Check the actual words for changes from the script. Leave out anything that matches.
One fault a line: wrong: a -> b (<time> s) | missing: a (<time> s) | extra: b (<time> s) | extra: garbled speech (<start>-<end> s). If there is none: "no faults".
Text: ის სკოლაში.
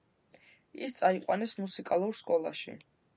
extra: წაიყვანეს მუსიკალურ (1.0 s)